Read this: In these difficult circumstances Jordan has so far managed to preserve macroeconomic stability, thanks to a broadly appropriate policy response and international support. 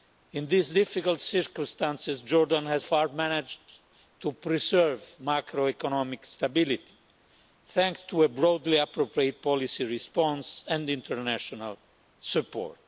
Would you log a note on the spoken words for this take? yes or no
yes